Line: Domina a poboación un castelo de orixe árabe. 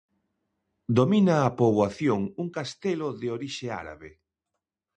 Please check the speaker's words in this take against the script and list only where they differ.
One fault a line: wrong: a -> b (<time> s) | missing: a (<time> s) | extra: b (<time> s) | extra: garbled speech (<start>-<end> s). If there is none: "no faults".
no faults